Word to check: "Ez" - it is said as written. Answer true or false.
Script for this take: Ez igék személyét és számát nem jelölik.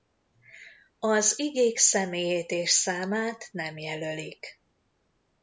false